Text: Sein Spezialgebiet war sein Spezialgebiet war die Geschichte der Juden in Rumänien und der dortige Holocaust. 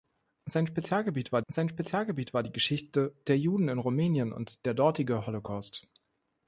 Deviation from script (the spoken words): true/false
false